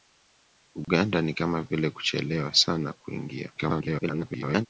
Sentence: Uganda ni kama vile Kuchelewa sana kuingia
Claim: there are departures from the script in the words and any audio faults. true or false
true